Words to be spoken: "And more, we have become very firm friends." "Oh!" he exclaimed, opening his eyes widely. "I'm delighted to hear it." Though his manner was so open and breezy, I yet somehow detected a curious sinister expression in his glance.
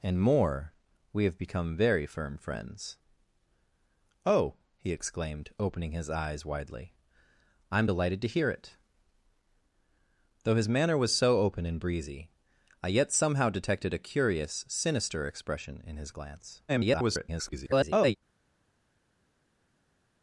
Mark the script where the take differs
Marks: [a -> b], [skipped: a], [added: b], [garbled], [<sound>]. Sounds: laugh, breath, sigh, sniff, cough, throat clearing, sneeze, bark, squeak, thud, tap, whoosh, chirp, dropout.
"And more, we have become very firm friends." "Oh!" he exclaimed, opening his eyes widely. "I'm delighted to hear it." Though his manner was so open and breezy, I yet somehow detected a curious sinister expression in his glance. [garbled]